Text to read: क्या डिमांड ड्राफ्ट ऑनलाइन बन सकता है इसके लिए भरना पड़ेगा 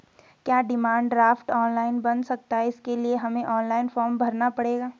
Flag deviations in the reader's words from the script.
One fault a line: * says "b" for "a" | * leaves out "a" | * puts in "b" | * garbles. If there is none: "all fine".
* puts in "हमें ऑनलाइन फॉर्म"